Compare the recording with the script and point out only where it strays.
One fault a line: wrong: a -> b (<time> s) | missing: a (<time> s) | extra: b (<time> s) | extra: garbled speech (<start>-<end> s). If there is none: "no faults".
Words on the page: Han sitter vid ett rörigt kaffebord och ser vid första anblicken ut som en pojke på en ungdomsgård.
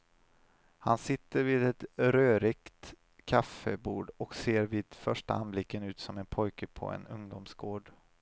no faults